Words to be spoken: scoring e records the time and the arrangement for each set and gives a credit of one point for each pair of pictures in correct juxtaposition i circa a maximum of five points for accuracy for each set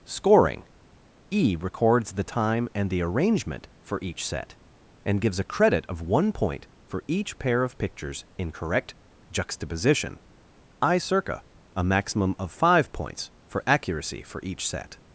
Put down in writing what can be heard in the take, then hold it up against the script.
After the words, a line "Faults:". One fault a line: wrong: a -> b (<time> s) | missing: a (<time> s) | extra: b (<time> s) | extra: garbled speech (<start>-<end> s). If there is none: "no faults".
scoring e records the time and the arrangement for each set and gives a credit of one point for each pair of pictures in correct juxtaposition i circa a maximum of five points for accuracy for each set
Faults:
no faults